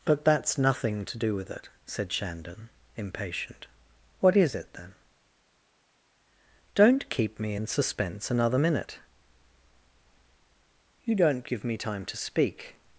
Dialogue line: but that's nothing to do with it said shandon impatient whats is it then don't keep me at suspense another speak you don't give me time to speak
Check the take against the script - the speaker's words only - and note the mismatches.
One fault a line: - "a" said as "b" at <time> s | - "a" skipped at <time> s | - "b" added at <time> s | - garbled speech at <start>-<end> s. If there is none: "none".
- "whats" said as "what" at 4.2 s
- "at" said as "in" at 7.5 s
- "speak" said as "minute" at 8.5 s